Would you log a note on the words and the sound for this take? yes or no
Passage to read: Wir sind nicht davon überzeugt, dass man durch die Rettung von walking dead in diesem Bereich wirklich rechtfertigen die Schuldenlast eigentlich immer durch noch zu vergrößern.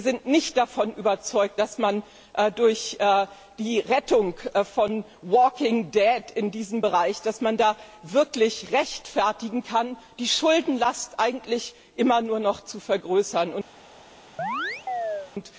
yes